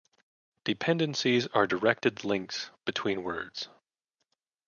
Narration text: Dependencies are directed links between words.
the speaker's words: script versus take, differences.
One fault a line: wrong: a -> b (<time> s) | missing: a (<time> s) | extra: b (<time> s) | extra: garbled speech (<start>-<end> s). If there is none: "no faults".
no faults